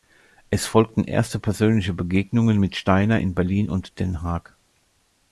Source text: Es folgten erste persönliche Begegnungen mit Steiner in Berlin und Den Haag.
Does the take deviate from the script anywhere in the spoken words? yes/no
no